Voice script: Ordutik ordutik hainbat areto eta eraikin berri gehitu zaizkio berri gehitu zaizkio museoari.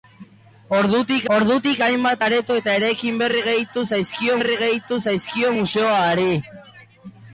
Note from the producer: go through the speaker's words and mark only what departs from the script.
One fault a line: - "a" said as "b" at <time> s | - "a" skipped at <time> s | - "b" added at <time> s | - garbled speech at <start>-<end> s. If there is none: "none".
none